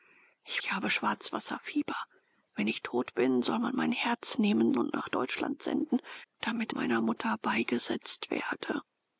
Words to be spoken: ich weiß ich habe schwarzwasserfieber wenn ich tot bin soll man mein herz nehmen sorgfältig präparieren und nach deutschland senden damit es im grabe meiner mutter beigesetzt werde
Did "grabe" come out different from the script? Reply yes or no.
yes